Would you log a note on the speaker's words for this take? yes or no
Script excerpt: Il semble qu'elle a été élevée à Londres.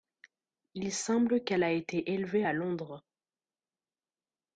no